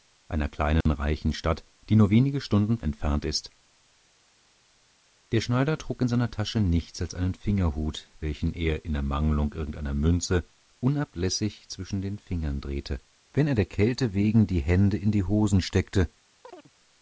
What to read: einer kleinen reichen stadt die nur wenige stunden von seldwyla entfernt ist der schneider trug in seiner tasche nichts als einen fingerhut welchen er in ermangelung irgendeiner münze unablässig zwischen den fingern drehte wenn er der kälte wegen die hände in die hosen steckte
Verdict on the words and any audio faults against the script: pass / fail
fail